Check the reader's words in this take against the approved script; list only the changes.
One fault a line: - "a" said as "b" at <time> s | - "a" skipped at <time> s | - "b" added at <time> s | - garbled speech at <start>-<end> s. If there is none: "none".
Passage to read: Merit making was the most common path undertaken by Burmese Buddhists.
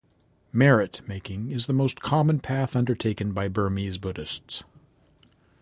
- "was" said as "is" at 1.5 s